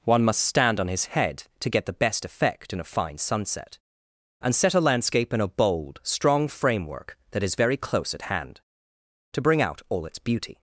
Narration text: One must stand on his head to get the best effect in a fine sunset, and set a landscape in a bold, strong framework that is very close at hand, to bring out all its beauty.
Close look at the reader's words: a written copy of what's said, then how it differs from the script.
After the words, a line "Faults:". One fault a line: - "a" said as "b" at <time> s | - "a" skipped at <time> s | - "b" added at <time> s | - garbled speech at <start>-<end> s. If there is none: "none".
One must stand on his head to get the best effect in a fine sunset, and set a landscape in a bold, strong framework that is very close at hand, to bring out all its beauty.
Faults:
none